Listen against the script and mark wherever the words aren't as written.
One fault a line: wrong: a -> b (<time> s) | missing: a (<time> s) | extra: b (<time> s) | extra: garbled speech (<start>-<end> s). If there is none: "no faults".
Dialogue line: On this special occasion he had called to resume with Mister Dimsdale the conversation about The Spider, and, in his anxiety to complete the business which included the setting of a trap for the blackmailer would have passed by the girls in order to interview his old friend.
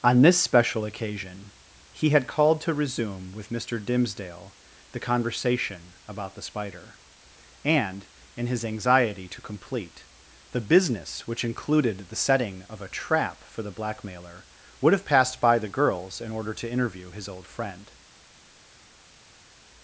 no faults